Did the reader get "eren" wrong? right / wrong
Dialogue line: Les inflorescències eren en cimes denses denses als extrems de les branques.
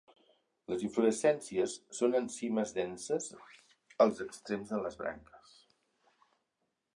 wrong